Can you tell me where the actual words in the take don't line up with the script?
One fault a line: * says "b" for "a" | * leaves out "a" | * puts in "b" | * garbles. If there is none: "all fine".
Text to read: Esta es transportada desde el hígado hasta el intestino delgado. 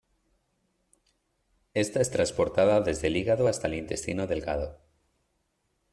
all fine